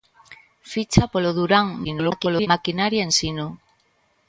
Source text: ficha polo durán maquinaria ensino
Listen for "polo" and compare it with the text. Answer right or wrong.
right